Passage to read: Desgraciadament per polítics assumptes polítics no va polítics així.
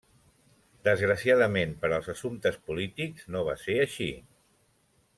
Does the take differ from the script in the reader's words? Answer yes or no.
yes